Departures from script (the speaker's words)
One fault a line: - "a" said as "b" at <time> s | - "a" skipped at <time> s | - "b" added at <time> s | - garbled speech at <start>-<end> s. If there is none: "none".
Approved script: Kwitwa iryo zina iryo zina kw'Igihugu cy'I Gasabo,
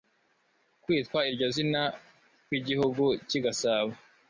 - "iryo zina" skipped at 1.8 s